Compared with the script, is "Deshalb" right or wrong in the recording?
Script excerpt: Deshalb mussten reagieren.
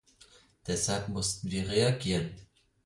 right